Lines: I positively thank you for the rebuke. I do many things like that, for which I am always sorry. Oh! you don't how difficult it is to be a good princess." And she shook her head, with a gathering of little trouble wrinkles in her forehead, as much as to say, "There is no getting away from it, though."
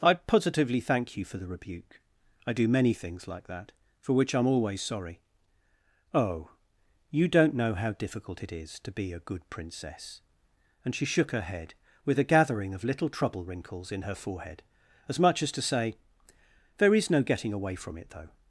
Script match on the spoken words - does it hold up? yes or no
no